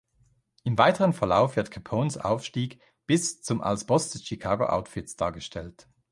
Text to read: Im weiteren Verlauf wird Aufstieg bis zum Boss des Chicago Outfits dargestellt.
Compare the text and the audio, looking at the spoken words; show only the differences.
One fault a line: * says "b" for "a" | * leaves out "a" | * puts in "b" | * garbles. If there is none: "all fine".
* puts in "Capones"
* puts in "als"